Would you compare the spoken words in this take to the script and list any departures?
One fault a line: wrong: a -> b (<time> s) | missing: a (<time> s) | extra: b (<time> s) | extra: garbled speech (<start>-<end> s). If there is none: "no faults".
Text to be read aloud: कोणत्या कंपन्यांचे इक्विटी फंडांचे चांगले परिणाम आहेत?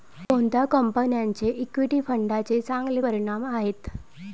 no faults